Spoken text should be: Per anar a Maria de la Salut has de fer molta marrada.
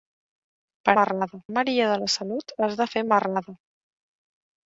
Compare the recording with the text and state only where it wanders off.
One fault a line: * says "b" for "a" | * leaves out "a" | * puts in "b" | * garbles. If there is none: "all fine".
* says "marrada" for "anar"
* leaves out "molta"